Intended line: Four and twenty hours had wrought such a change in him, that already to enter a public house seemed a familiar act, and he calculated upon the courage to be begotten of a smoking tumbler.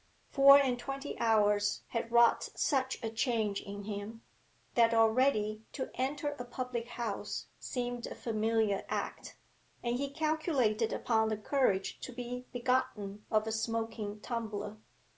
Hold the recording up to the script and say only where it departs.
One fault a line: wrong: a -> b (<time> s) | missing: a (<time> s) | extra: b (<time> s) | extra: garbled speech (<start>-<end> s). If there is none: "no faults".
no faults